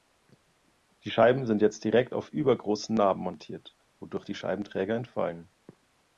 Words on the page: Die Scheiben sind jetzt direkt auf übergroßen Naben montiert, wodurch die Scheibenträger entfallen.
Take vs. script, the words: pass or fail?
pass